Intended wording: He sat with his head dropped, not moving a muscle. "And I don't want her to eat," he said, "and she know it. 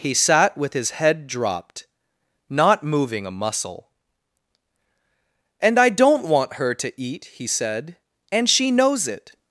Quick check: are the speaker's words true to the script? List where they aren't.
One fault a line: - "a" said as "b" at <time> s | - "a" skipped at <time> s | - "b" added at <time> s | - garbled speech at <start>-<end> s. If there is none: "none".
- "know" said as "knows" at 8.7 s